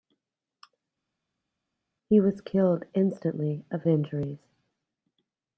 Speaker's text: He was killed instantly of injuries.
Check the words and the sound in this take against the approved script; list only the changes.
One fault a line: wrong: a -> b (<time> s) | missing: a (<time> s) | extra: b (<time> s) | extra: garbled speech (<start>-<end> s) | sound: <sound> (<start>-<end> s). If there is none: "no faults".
no faults